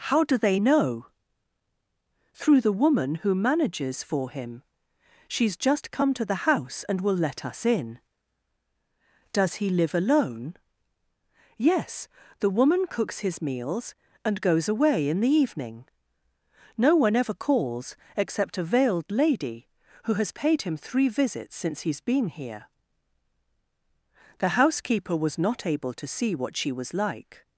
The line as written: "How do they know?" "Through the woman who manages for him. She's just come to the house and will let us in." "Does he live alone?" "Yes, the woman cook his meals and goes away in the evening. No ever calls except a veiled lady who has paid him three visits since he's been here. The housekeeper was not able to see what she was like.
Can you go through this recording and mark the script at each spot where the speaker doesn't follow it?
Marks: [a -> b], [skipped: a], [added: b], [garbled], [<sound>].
"How do they know?" "Through the woman who manages for him. She's just come to the house and will let us in." "Does he live alone?" "Yes, the woman [cook -> cooks] his meals and goes away in the evening. No [added: one] ever calls except a veiled lady who has paid him three visits since he's been here. The housekeeper was not able to see what she was like.